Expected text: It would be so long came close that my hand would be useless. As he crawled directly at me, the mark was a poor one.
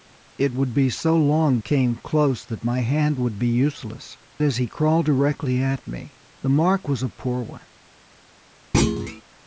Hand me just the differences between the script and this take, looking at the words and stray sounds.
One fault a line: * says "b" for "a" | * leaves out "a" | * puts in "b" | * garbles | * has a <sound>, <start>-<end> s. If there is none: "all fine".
* has a thud, 8.7-9.2 s